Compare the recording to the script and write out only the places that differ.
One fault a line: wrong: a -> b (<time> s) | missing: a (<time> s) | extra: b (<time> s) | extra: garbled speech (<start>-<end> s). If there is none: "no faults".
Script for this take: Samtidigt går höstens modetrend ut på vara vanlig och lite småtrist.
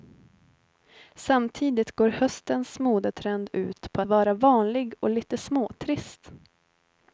no faults